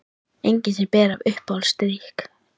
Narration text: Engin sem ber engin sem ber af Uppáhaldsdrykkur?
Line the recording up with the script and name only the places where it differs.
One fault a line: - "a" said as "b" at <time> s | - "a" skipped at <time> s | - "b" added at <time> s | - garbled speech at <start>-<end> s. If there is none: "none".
- "engin sem ber" skipped at 1.1 s